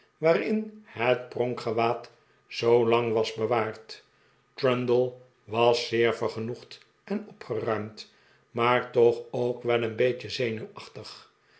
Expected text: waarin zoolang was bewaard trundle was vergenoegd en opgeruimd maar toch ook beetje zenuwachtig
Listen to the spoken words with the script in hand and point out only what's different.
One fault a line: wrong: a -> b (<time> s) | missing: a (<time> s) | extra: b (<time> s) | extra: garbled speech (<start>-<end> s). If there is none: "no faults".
extra: het pronkgewaad (0.8 s)
extra: zeer (5.9 s)
extra: wel een (9.6 s)